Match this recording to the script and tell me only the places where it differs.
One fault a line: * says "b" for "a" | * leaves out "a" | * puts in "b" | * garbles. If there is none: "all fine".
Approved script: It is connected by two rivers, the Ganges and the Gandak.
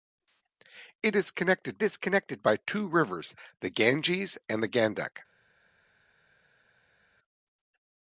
* puts in "is connected"